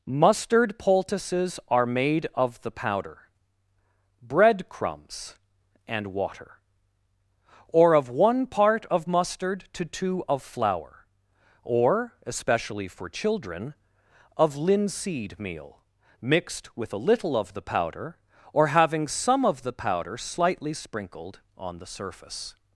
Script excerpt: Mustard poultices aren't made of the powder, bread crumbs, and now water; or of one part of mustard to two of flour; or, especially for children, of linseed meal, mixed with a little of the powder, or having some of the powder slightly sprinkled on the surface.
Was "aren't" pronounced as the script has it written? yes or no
no